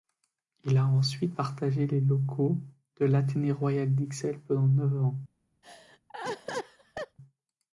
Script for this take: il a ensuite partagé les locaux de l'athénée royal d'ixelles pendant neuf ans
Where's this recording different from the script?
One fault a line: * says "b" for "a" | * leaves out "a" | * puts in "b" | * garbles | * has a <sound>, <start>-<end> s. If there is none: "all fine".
* has a laugh, 5.6-7.2 s